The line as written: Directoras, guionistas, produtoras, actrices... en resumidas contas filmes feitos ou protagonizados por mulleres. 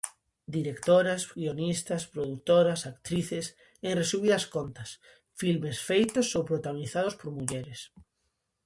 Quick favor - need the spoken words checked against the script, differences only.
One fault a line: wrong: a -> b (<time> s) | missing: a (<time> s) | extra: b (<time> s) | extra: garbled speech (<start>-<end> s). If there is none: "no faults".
no faults